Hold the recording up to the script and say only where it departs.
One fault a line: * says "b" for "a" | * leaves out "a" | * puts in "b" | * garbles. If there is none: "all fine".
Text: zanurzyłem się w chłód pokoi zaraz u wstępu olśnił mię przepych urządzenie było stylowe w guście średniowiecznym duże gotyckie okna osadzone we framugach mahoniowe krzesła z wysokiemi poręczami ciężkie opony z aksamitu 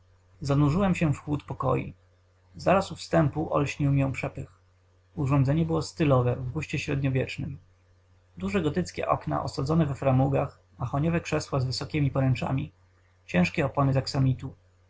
all fine